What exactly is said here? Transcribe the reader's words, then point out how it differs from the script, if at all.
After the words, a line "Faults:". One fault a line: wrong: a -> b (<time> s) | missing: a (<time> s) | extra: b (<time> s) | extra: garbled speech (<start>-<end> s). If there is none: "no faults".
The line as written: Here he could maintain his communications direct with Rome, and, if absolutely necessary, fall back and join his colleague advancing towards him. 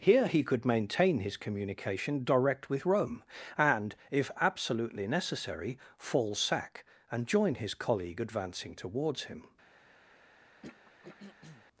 Here he could maintain his communication direct with Rome, and, if absolutely necessary, fall sack and join his colleague advancing towards him.
Faults:
wrong: communications -> communication (1.4 s)
wrong: back -> sack (6.3 s)